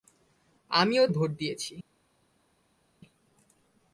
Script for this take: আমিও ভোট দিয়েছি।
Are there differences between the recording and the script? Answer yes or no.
no